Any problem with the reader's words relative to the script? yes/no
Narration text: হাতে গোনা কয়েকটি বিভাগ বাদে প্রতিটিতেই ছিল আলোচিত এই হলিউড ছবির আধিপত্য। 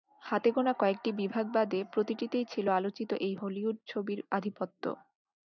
no